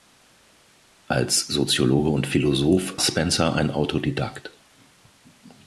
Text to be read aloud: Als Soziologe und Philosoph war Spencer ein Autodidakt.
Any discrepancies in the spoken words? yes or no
yes